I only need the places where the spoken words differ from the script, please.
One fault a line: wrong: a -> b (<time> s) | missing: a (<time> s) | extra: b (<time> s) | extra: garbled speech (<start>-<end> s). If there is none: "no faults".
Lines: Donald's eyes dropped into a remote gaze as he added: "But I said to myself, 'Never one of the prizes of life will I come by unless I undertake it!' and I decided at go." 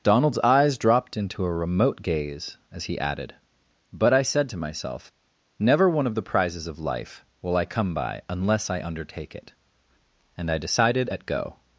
no faults